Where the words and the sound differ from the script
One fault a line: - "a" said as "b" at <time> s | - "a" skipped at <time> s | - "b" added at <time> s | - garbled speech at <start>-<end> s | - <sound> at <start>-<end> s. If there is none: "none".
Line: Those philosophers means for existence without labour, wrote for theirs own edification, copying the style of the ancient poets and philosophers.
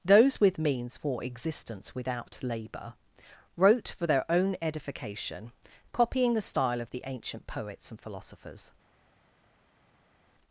- "philosophers" said as "with" at 0.4 s
- "theirs" said as "their" at 4.1 s